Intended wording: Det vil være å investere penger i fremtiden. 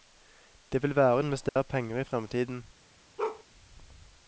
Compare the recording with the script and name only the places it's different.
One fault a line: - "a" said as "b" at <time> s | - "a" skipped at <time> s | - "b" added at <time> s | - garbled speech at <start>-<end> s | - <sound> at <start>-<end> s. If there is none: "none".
- dropout at 1.5-1.6 s
- bark at 3.2-3.4 s